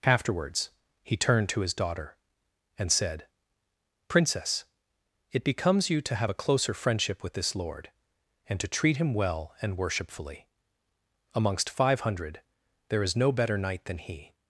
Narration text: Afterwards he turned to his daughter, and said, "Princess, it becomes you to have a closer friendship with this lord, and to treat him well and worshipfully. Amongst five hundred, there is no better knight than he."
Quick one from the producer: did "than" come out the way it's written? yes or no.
yes